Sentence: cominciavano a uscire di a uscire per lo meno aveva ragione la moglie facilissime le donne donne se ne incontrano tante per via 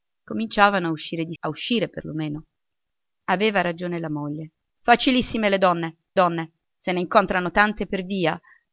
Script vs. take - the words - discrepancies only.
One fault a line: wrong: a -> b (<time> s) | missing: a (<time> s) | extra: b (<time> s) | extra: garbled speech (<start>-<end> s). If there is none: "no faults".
no faults